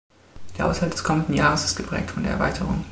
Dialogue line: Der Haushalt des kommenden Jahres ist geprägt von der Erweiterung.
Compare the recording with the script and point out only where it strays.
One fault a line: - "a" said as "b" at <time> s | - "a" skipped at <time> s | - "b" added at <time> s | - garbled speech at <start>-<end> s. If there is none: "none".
none